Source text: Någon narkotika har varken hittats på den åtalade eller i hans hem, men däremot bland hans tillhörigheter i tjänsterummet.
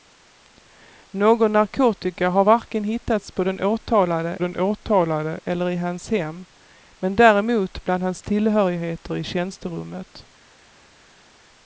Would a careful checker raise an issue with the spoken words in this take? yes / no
yes